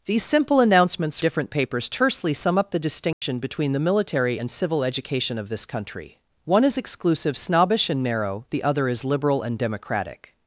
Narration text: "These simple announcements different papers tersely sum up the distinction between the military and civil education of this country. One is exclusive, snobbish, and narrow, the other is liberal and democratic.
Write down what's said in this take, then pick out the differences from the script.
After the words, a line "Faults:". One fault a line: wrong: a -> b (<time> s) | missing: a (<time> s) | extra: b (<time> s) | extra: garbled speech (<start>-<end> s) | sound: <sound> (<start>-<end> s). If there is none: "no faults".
"These simple announcements different papers tersely sum up the distinction between the military and civil education of this country. One is exclusive, snobbish, and narrow, the other is liberal and democratic.
Faults:
sound: dropout (3.1-3.2 s)